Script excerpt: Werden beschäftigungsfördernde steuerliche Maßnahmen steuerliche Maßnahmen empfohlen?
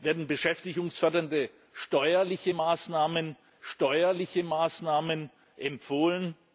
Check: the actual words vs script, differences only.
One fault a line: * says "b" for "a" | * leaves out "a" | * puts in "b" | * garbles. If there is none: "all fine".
all fine